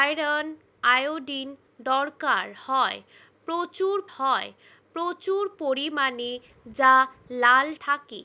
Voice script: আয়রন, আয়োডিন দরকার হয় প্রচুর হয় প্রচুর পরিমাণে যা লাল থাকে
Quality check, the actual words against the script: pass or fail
pass